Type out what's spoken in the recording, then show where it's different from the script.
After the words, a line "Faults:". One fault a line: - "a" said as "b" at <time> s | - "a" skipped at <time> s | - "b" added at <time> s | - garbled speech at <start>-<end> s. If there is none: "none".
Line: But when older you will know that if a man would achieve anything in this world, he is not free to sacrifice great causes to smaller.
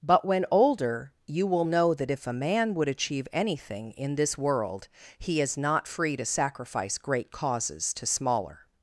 But when older you will know that if a man would achieve anything in this world, he is not free to sacrifice great causes to smaller.
Faults:
none